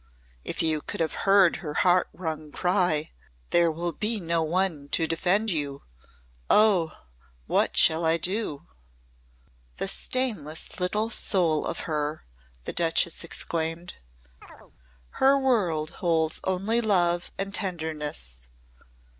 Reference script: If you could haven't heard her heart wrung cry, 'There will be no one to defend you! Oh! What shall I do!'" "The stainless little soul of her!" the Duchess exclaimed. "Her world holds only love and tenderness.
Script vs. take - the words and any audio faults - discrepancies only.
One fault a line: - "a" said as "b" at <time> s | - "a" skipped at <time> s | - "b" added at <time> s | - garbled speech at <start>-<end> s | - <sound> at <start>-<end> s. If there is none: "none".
- "haven't" said as "have" at 1.0 s
- chirp at 14.4-14.7 s